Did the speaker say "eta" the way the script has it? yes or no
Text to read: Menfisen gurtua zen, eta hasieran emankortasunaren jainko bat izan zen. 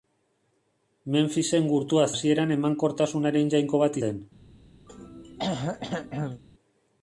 no